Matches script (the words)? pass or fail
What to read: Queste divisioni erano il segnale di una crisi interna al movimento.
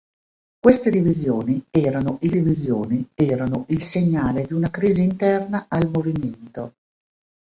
fail